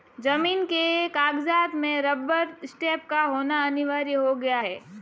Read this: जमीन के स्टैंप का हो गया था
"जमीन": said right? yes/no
yes